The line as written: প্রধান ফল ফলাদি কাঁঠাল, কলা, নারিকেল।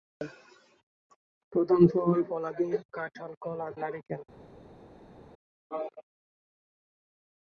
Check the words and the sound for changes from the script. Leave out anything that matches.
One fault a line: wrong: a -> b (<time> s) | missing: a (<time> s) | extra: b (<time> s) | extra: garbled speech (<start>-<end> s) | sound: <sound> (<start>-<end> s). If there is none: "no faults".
no faults